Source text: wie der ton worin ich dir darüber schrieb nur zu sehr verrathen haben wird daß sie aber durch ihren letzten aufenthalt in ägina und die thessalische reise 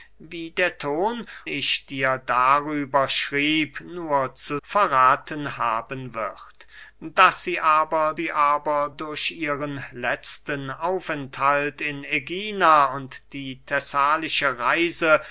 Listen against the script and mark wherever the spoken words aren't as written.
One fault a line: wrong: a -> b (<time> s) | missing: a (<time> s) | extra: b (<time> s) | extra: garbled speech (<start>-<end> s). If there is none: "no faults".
missing: worin (1.3 s)
missing: sehr (4.6 s)
extra: sie aber (8.1 s)